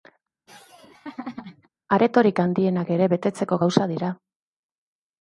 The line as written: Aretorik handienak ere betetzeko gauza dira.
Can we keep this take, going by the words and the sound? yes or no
no